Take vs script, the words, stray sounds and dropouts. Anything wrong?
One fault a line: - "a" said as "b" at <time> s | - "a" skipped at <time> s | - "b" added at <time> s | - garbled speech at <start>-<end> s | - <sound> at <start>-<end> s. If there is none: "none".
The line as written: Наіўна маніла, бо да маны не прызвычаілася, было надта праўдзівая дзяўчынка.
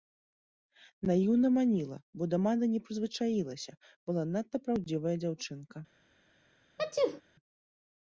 - "было" said as "была" at 4.1 s
- sneeze at 6.8-7.2 s